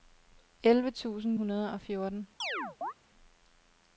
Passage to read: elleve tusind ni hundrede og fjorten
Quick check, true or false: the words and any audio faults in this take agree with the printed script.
false